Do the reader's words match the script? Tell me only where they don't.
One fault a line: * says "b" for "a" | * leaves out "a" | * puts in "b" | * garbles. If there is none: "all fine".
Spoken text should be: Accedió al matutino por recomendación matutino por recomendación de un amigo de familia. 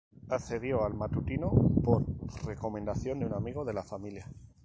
* leaves out "matutino por recomendación"
* puts in "la"